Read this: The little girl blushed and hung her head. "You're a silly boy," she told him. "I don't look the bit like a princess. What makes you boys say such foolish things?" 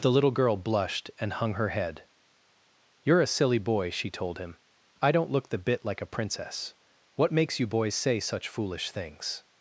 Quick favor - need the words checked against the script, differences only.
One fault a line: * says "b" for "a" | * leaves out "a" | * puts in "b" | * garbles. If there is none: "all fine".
all fine